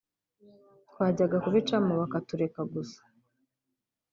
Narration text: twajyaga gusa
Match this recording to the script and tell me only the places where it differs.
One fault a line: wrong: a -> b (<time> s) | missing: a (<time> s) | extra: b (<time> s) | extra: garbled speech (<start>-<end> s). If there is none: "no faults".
extra: kubicamo bakatureka (1.4 s)